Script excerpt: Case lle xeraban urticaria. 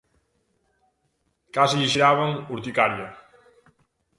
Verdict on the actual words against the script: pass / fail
pass